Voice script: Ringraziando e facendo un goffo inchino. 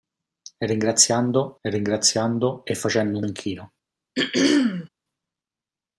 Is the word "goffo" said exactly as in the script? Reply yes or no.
no